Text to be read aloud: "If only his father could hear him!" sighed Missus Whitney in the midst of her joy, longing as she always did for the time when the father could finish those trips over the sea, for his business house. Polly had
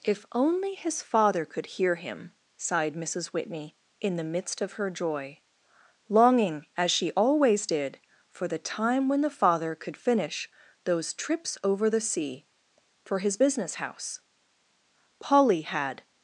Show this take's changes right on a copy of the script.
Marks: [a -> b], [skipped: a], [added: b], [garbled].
"If only his father could hear him!" sighed Missus Whitney in the midst of her joy, longing as she always did for the time when the father could finish those trips over the sea, for his business house. Polly had